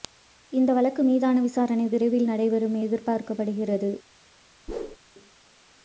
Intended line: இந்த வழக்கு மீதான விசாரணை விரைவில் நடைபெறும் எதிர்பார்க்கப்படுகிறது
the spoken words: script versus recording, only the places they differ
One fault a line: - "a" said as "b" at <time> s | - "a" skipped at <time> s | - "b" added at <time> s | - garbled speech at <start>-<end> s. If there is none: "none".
none